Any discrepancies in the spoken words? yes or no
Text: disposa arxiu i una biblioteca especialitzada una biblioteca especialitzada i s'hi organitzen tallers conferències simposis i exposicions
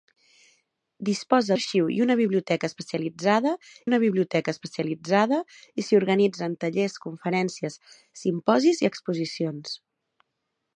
no